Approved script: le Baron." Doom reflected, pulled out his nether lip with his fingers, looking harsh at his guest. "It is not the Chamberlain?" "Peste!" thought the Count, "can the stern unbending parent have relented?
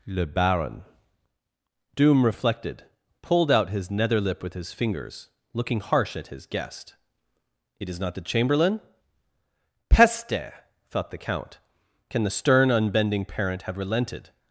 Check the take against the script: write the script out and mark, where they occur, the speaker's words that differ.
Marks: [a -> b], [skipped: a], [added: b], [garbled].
le Baron." Doom reflected, pulled out his nether lip with his fingers, looking harsh at his guest. "It is not the Chamberlain?" "Peste!" thought the Count, "can the stern unbending parent have relented?